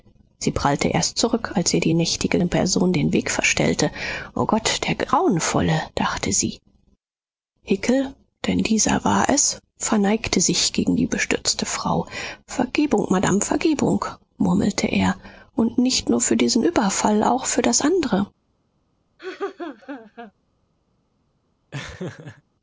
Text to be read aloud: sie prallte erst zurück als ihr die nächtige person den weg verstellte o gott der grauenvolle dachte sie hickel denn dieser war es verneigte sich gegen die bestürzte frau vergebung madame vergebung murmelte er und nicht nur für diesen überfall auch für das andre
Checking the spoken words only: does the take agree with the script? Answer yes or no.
yes